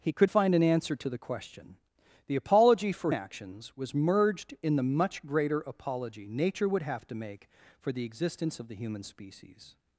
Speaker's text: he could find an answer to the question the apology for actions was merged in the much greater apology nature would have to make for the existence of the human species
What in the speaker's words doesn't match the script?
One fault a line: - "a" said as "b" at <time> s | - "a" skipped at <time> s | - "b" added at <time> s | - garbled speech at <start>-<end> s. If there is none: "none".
none